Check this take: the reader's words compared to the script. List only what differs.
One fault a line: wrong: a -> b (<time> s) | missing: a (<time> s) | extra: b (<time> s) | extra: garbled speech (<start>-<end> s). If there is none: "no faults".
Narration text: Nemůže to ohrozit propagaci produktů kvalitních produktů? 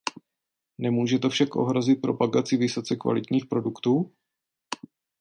extra: však (1.3 s)
wrong: produktů -> vysoce (2.6 s)